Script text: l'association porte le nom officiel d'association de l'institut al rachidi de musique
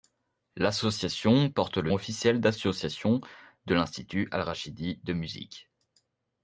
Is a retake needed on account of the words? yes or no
yes